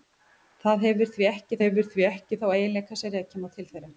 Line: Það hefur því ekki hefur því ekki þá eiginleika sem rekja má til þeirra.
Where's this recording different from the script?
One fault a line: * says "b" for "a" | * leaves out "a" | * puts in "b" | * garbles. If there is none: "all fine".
all fine